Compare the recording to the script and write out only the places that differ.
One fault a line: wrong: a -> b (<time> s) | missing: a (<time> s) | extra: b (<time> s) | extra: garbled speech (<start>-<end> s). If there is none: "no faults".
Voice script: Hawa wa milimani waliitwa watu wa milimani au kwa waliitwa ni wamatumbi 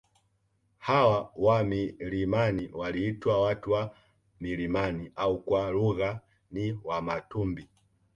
wrong: waliitwa -> lugha (5.7 s)